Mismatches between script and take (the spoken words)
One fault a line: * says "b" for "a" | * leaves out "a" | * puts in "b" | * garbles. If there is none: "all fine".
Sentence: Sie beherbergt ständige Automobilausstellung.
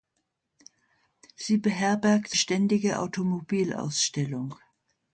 all fine